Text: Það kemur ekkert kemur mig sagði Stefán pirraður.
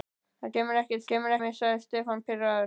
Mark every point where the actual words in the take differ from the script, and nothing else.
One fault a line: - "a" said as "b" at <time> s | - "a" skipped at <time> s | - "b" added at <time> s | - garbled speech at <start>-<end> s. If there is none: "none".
none